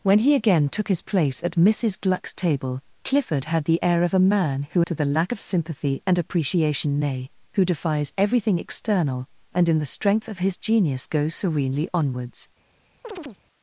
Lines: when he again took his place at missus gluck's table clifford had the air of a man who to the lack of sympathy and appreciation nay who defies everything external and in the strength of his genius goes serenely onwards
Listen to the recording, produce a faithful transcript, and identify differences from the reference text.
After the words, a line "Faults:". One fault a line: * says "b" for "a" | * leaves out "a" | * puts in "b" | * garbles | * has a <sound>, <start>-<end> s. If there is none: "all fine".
when he again took his place at missus gluck's table clifford had the air of a man who to the lack of sympathy and appreciation nay who defies everything external and in the strength of his genius goes serenely onwards
Faults:
* has a chirp, 13.0-13.4 s